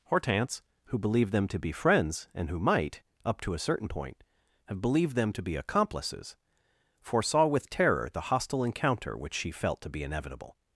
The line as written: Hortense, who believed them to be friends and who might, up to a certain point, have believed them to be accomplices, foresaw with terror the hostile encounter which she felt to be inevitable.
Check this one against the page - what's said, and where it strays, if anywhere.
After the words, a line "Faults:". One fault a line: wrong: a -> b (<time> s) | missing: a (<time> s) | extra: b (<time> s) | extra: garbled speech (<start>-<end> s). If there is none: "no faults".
Hortense, who believed them to be friends and who might, up to a certain point, have believed them to be accomplices, foresaw with terror the hostile encounter which she felt to be inevitable.
Faults:
no faults